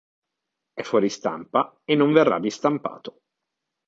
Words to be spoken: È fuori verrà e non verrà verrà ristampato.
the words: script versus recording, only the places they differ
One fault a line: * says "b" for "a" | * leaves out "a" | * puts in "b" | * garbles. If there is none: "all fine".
* says "stampa" for "verrà"
* leaves out "verrà"